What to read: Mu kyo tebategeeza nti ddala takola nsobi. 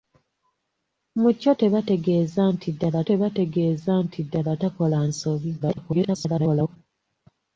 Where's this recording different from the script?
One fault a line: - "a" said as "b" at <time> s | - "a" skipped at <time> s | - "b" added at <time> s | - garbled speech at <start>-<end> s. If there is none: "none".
- "tebategeeza nti ddala" added at 3.1 s
- garbled speech at 5.6-6.8 s